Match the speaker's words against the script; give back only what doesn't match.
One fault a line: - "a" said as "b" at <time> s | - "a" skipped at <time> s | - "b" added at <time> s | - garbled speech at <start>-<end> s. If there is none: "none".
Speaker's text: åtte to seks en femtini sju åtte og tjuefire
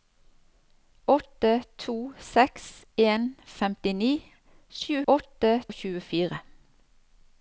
none